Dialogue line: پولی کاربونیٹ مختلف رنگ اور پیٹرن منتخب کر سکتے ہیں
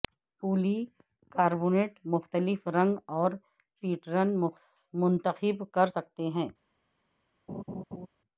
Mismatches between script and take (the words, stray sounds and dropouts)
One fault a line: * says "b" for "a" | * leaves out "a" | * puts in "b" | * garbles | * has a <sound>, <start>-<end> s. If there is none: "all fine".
* has a laugh, 7.5-8.1 s